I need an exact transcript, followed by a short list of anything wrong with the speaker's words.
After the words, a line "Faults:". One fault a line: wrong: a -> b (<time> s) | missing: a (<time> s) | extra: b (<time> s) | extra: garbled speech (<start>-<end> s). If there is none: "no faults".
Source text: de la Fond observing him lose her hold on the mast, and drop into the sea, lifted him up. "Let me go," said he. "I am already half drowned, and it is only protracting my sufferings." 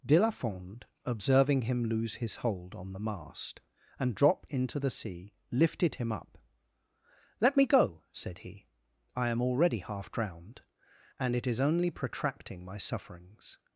de la Fond observing him lose his hold on the mast, and drop into the sea, lifted him up. "Let me go," said he. "I am already half drowned, and it is only protracting my sufferings."
Faults:
wrong: her -> his (2.1 s)